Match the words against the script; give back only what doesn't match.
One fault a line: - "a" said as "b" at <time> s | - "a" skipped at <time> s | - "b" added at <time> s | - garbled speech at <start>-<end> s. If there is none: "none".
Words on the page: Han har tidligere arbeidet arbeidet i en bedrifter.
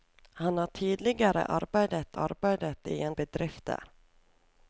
none